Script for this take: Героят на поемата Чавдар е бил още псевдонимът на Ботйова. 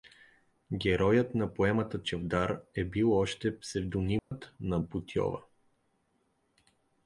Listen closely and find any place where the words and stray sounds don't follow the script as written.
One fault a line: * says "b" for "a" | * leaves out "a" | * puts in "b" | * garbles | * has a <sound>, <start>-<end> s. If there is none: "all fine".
* has a dropout, 4.2-4.3 s